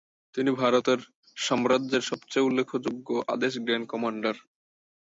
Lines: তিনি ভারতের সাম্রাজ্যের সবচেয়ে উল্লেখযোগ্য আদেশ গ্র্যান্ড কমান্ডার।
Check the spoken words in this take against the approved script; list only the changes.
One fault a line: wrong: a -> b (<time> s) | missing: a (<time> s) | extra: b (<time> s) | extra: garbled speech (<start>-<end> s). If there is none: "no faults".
no faults